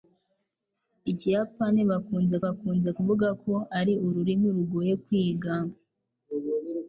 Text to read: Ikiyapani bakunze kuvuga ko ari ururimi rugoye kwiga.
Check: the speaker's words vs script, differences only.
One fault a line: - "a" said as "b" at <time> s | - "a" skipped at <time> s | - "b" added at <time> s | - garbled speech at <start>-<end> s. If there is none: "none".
- "bakunze" added at 2.4 s